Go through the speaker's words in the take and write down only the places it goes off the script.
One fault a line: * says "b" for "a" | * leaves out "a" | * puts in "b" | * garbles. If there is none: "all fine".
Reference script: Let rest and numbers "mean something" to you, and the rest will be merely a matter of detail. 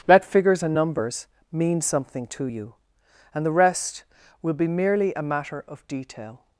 * says "figures" for "rest"